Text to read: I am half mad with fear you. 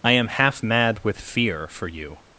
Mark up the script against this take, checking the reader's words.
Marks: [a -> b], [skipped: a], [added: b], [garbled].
I am half mad with fear [added: for] you.